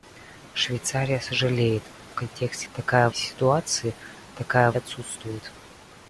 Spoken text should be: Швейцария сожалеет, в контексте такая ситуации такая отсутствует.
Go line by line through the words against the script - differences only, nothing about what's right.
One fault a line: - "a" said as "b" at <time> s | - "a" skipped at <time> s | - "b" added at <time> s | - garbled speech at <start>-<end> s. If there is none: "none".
none